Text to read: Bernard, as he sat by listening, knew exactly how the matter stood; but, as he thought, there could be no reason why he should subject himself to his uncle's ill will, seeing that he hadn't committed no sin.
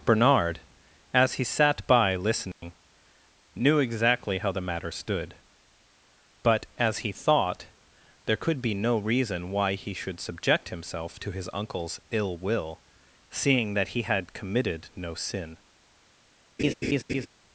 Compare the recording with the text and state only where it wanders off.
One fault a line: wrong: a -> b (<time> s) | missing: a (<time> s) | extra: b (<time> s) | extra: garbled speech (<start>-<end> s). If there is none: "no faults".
wrong: hadn't -> had (14.0 s)